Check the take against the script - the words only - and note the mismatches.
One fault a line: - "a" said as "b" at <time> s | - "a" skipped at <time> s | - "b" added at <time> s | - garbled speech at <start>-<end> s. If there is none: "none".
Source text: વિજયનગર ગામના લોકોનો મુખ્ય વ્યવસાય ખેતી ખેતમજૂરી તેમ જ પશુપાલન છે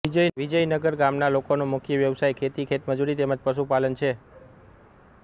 none